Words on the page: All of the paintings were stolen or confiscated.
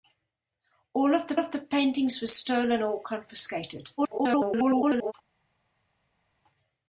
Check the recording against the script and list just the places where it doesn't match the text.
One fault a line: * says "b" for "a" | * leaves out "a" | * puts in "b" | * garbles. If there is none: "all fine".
* puts in "of the"
* garbles